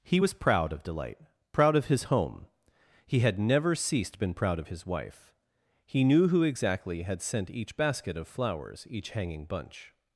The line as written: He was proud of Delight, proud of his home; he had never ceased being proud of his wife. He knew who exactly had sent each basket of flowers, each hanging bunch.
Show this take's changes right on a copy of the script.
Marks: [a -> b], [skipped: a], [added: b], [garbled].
He was proud of Delight, proud of his home; he had never ceased [being -> been] proud of his wife. He knew who exactly had sent each basket of flowers, each hanging bunch.